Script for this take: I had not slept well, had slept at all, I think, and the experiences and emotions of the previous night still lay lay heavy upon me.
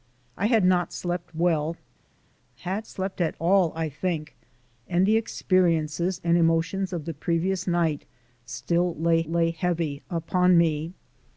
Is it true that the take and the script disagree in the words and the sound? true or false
false